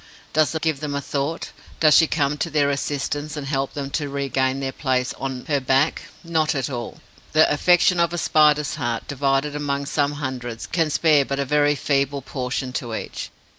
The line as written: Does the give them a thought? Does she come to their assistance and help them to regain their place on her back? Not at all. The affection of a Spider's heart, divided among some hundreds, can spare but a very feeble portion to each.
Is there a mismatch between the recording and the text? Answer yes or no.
no